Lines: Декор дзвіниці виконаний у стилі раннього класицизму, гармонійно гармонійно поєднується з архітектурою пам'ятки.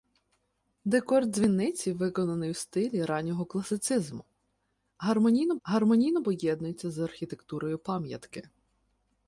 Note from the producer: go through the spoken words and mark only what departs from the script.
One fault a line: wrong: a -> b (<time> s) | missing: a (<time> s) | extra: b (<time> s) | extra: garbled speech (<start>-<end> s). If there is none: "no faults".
no faults